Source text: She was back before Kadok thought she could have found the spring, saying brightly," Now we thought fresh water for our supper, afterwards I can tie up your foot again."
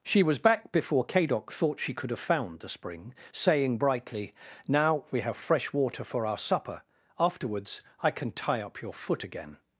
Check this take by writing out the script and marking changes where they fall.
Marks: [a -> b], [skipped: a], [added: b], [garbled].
She was back before Kadok thought she could have found the spring, saying brightly," Now we [thought -> have] fresh water for our supper, afterwards I can tie up your foot again."